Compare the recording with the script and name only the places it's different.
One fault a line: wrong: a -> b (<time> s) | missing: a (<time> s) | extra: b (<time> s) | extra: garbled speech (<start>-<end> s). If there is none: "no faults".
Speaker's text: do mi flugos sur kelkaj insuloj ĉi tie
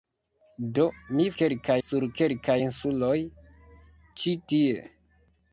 wrong: flugos -> kelkaj (1.4 s)